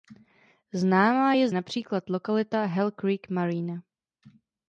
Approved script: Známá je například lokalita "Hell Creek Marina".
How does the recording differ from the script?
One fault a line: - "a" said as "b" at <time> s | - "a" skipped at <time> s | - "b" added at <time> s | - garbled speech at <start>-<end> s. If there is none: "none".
none